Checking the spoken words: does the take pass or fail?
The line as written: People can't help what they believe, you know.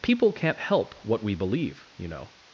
fail